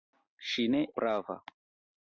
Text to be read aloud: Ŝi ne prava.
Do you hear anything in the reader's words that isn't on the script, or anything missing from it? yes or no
no